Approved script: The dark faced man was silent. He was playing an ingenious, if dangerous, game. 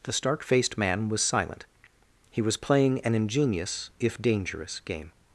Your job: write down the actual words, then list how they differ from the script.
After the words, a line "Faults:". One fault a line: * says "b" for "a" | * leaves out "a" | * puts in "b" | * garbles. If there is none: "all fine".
The stark faced man was silent. He was playing an ingenious, if dangerous, game.
Faults:
* says "stark" for "dark"